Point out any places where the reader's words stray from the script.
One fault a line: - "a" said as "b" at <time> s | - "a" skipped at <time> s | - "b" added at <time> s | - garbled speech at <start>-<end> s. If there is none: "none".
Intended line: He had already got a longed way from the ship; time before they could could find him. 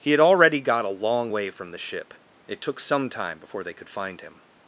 - "longed" said as "long" at 0.9 s
- "it took some" added at 2.5 s
- "could" skipped at 3.9 s